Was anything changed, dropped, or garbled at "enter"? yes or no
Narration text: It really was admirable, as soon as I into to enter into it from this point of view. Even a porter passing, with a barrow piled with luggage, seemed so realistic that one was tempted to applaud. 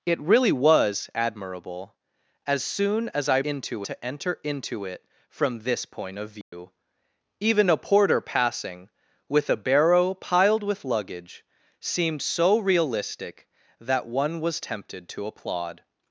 no